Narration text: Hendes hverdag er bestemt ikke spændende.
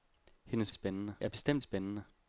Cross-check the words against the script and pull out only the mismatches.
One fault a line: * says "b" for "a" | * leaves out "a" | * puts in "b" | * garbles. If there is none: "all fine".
* says "spændende" for "hverdag"
* leaves out "ikke"